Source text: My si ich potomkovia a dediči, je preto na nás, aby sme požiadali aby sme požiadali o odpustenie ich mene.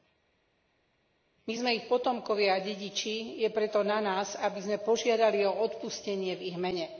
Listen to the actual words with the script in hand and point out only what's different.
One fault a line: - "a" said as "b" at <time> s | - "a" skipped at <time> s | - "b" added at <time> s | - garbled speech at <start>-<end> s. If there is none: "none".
- "si" said as "sme" at 1.5 s
- "aby sme požiadali" skipped at 5.4 s
- "v" added at 6.4 s